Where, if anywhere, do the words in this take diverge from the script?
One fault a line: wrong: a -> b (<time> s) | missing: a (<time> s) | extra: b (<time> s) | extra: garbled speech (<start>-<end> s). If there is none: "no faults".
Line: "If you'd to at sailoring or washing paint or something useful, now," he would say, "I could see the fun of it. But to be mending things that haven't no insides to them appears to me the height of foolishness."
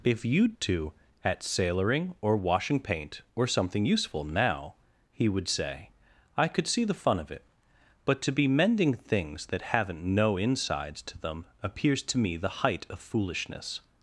no faults